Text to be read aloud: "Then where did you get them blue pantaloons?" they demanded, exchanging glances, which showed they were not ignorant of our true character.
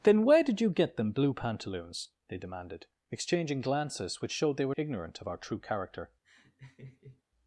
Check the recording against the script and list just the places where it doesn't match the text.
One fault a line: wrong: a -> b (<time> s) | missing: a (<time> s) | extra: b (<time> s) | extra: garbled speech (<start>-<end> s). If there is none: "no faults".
missing: not (4.7 s)